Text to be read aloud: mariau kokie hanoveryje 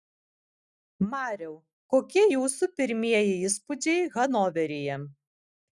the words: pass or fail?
fail